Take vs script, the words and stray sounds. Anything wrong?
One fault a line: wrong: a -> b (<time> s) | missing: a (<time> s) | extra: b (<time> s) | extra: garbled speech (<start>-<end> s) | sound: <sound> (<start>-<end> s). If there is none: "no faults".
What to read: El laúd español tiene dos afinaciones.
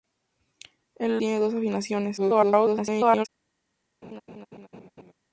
missing: laúd español (1.2 s)
extra: garbled speech (2.2-3.3 s)
sound: laugh (4.0-5.1 s)